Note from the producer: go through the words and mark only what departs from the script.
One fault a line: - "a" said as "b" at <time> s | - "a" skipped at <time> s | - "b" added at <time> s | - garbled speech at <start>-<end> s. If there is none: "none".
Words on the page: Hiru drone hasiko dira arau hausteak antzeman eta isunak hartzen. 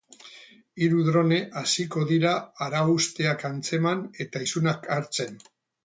none